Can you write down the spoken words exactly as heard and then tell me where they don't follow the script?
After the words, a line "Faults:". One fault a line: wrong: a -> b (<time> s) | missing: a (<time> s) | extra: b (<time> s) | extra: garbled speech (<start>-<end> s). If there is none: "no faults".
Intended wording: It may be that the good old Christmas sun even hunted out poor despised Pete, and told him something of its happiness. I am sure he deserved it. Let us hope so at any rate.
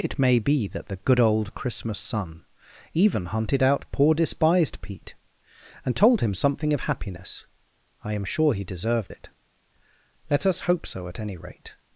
It may be that the good old Christmas sun even hunted out poor despised Pete, and told him something of happiness. I am sure he deserved it. Let us hope so at any rate.
Faults:
missing: its (6.8 s)